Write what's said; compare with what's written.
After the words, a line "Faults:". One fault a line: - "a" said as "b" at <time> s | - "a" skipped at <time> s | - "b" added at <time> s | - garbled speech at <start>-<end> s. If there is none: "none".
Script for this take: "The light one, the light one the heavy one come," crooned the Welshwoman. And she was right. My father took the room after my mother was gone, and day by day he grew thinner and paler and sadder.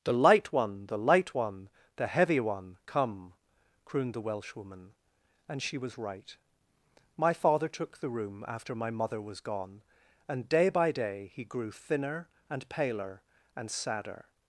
"The light one, the light one the heavy one come," crooned the Welshwoman. And she was right. My father took the room after my mother was gone, and day by day he grew thinner and paler and sadder.
Faults:
none